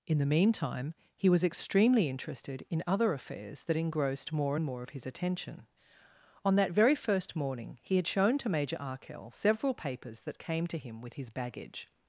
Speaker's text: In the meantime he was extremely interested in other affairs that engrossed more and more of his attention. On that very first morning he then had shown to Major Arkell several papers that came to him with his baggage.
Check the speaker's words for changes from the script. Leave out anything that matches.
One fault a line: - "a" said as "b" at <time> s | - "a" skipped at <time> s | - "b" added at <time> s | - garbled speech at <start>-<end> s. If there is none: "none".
- "then" skipped at 8.0 s